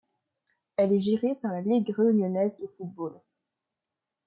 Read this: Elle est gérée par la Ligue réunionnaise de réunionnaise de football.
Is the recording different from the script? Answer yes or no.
yes